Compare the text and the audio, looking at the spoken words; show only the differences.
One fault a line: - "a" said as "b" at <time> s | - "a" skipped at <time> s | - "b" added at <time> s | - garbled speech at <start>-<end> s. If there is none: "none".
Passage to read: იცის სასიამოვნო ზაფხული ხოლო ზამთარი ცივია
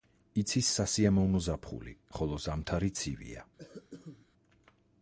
none